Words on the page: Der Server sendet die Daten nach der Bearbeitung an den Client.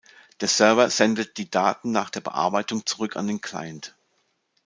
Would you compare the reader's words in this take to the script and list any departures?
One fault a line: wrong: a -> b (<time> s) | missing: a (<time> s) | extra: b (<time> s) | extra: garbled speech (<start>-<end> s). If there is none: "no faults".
extra: zurück (2.9 s)